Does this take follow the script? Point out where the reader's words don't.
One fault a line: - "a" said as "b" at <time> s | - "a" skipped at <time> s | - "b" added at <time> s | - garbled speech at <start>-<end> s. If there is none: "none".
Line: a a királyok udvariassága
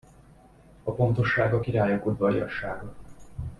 - "pontosság" added at 0.9 s